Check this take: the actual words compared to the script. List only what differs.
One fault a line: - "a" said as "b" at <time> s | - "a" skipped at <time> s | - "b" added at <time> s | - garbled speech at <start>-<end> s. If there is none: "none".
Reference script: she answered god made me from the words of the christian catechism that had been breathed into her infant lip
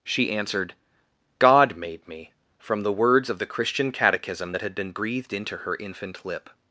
none